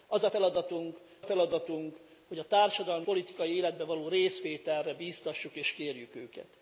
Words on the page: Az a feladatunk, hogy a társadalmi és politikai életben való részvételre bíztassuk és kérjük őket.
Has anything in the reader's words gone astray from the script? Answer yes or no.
yes